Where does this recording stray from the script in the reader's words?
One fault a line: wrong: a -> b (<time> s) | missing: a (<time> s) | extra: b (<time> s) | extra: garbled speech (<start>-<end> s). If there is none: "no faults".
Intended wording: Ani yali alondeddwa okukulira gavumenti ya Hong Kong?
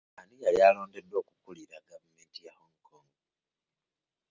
no faults